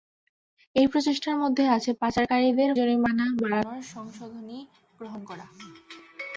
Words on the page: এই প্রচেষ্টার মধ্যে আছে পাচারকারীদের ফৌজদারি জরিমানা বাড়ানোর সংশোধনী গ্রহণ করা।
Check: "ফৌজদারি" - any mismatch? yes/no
yes